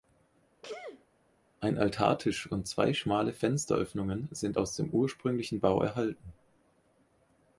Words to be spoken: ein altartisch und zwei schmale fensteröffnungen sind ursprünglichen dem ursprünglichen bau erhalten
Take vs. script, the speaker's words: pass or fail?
fail